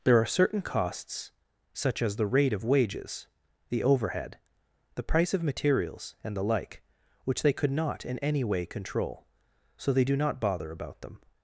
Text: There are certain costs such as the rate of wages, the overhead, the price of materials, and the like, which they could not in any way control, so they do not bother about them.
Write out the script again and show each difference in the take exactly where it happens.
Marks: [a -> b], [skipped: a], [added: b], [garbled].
There are certain costs such as the rate of wages, the overhead, the price of materials, and the like, which they could not in any way control, so they do not bother about them.